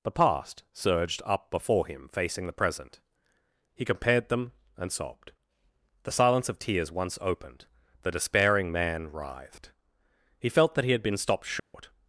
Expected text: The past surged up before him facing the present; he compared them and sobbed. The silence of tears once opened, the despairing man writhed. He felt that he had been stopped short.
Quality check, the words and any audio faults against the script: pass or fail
fail